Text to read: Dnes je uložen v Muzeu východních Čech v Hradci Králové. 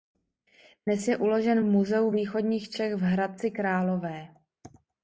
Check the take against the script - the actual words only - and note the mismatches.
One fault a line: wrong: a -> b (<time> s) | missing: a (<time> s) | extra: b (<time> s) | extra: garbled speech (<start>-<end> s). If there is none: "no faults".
no faults